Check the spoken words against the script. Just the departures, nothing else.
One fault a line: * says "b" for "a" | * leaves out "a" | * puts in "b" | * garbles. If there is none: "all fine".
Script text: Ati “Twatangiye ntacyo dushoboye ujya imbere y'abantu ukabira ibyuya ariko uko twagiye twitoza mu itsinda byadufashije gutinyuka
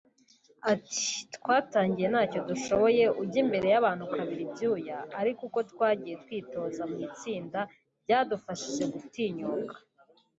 all fine